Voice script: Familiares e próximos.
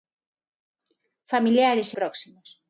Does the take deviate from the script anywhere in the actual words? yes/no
no